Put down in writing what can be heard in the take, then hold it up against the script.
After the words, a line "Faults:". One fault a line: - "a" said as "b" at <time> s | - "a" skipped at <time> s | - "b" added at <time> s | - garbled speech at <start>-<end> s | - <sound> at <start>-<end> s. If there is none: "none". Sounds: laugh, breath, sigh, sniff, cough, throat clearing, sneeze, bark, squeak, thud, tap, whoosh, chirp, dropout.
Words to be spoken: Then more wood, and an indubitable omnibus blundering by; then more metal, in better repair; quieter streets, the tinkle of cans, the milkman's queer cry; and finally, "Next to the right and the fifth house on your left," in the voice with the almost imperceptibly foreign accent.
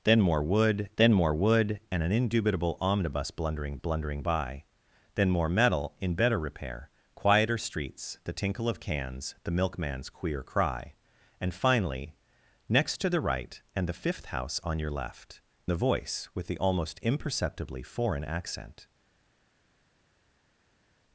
Then more wood then more wood, and an indubitable omnibus blundering blundering by; then more metal, in better repair; quieter streets, the tinkle of cans, the milkman's queer cry; and finally, "Next to the right and the fifth house on your left," the voice with the almost imperceptibly foreign accent.
Faults:
- "then more wood" added at 1.0 s
- "blundering" added at 3.8 s
- "in" skipped at 15.4 s